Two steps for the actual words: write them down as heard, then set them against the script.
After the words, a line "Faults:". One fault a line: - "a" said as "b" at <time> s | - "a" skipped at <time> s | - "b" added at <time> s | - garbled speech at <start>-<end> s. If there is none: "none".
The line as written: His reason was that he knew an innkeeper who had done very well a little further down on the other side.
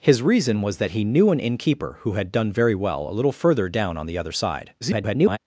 His reason was that he knew an innkeeper who had done very well a little further down on the other side. [garbled]
Faults:
- garbled speech at 4.8-5.4 s